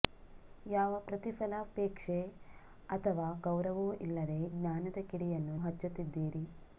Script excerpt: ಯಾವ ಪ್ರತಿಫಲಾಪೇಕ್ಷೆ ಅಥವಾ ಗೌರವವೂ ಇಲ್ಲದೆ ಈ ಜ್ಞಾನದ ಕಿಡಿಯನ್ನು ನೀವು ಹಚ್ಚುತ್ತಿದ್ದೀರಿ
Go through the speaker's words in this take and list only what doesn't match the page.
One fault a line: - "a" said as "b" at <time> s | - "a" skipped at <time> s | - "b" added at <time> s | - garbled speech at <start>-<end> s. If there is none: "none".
- "ಈ" skipped at 4.4 s
- "ನೀವು" skipped at 5.6 s